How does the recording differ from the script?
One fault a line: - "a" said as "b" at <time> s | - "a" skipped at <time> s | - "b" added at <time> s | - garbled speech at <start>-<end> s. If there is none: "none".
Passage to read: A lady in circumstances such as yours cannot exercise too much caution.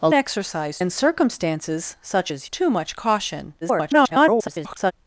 - "lady" said as "exercise" at 0.1 s
- "yours cannot exercise" skipped at 2.5 s
- garbled speech at 3.6-4.9 s